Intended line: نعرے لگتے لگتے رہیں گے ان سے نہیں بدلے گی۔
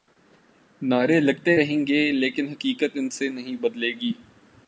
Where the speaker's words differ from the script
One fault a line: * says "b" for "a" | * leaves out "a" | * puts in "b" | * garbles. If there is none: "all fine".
* leaves out "لگتے"
* puts in "لیکن حقیقت"